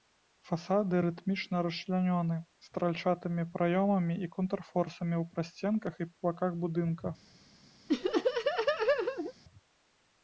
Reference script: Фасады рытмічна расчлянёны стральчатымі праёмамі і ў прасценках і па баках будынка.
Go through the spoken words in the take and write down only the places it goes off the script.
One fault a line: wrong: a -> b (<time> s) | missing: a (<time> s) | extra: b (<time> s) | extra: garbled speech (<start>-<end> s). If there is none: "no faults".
extra: контрфорсамі (4.4 s)